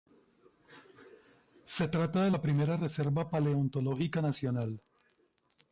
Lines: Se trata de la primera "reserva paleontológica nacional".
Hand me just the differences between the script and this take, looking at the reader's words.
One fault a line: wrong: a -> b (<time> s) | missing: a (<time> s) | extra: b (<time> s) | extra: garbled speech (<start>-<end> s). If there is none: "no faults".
no faults